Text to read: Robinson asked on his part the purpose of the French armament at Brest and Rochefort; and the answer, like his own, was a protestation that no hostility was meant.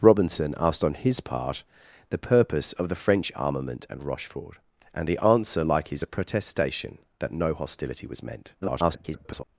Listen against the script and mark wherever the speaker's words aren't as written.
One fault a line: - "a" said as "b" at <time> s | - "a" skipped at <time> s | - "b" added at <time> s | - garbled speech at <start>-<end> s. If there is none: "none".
- "at Brest" skipped at 3.9 s
- "own was" skipped at 6.0 s
- garbled speech at 8.6-9.4 s